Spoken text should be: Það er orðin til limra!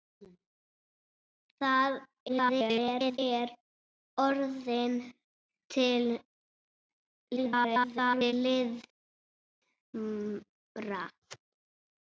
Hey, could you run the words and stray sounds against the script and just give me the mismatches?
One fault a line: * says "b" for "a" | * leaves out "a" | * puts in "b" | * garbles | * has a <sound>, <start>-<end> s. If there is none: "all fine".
* garbles
* garbles